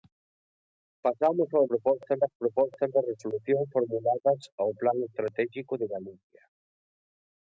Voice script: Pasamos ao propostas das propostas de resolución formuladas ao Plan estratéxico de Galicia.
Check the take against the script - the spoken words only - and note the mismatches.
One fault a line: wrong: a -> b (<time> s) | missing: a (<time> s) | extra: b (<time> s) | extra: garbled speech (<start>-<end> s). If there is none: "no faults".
no faults